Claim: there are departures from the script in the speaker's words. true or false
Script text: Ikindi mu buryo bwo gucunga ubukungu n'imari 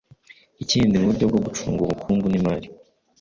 false